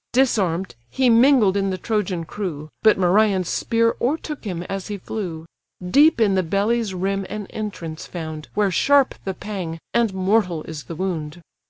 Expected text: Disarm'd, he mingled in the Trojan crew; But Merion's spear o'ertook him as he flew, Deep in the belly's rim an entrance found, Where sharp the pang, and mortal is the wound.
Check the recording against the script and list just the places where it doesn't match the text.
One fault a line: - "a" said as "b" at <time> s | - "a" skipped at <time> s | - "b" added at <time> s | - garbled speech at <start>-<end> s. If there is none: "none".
none